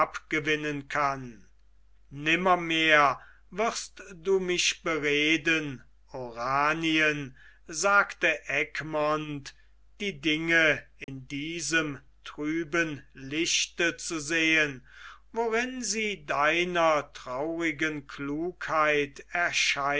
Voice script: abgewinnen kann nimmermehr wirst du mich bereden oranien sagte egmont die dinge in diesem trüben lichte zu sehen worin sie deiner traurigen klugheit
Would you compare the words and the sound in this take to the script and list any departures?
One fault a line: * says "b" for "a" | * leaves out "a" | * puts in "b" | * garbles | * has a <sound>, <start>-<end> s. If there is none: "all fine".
* has a dropout, 11.0-11.1 s